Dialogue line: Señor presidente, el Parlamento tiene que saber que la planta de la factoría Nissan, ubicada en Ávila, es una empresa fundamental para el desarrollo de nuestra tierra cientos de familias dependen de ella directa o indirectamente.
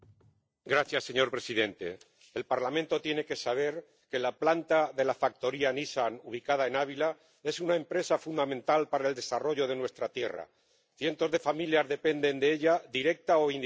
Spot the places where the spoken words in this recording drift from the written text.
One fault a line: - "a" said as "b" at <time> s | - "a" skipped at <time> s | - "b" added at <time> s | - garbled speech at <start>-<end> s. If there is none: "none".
none